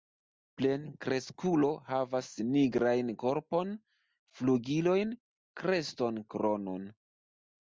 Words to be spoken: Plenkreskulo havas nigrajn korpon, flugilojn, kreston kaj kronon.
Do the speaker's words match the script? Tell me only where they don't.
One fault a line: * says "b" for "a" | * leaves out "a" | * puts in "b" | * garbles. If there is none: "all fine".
* leaves out "kaj"